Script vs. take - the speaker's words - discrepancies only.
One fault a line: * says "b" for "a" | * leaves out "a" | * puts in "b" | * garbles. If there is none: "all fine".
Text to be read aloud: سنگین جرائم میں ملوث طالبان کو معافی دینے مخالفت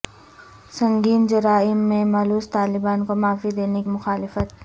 all fine